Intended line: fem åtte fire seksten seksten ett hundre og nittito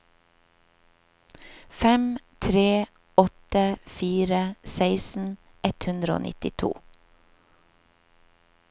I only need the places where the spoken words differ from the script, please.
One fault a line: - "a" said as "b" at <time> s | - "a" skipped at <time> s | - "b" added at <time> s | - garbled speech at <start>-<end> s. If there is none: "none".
- "tre" added at 2.4 s
- "seksten" skipped at 5.4 s